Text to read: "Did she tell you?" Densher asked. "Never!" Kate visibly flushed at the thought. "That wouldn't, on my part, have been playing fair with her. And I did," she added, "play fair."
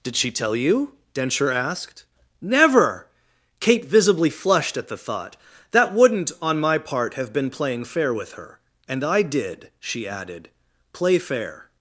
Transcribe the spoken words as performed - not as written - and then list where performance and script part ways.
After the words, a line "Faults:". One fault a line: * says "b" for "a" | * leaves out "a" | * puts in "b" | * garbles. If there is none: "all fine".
"Did she tell you?" Densher asked. "Never!" Kate visibly flushed at the thought. "That wouldn't, on my part, have been playing fair with her. And I did," she added, "play fair."
Faults:
all fine